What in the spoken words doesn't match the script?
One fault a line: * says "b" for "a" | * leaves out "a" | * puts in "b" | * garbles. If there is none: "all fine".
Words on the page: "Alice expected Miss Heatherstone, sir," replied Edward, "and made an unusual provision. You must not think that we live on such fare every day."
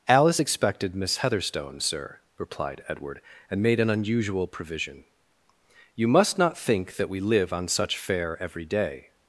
all fine